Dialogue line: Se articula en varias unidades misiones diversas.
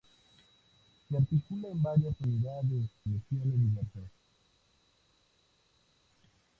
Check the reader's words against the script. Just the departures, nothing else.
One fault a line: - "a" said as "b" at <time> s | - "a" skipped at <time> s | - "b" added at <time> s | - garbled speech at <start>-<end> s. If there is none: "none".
none